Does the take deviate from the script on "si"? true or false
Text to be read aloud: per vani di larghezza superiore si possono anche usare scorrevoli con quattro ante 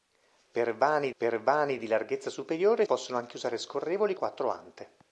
true